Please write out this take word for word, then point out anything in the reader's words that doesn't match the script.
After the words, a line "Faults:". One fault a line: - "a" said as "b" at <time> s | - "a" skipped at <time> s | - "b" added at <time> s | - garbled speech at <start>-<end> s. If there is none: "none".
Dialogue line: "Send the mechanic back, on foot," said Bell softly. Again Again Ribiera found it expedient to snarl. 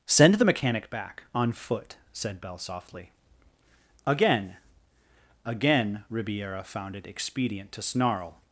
"Send the mechanic back, on foot," said Bell softly. Again Again Ribiera found it expedient to snarl.
Faults:
none